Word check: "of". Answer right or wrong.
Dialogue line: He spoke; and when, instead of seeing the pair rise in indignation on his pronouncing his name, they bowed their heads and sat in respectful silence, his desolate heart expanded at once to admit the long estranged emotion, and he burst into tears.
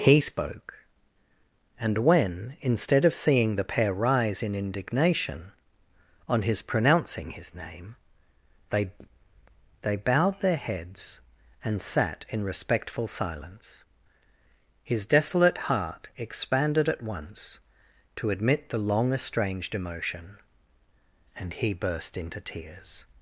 right